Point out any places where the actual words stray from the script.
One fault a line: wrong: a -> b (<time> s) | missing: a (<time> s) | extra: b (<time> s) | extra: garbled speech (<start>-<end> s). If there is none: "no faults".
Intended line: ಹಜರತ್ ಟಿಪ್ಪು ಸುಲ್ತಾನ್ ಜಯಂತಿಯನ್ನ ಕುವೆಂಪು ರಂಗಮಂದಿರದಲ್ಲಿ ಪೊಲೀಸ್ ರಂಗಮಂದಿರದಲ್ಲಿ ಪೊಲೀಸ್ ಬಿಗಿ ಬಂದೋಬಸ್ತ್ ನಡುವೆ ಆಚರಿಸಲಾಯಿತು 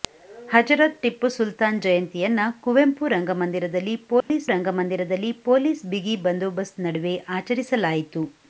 no faults